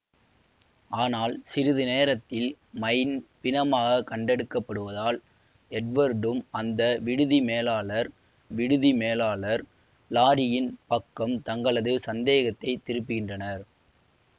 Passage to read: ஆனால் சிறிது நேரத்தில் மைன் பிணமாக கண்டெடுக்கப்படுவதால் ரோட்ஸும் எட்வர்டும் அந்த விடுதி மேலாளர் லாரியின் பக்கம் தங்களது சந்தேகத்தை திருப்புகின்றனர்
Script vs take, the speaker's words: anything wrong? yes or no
yes